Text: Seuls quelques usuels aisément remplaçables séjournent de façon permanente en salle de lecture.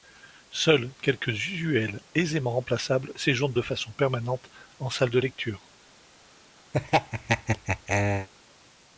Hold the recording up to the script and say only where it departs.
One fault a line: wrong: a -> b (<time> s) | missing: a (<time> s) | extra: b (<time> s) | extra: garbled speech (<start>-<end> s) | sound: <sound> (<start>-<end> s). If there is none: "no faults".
sound: laugh (6.7-8.3 s)